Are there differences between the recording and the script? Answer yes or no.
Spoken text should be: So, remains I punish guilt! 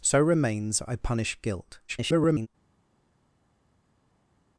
yes